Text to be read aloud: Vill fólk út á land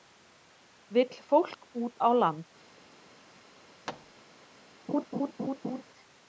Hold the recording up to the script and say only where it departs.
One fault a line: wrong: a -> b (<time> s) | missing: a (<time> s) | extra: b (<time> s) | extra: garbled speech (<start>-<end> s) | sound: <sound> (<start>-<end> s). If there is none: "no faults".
sound: thud (3.9-4.2 s)
sound: laugh (4.9-5.8 s)